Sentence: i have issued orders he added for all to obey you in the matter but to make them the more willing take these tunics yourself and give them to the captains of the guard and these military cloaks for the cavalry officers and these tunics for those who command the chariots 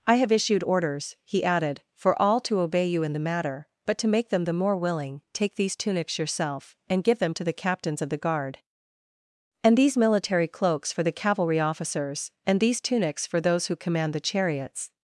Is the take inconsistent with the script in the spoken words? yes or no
no